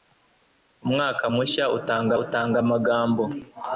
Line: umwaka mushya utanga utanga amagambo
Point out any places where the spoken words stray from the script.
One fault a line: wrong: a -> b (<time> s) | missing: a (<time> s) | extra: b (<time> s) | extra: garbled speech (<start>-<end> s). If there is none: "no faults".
no faults